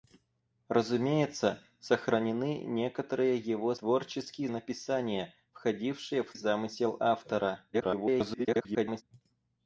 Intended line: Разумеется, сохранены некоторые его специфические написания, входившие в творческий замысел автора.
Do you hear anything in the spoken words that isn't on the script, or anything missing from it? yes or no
yes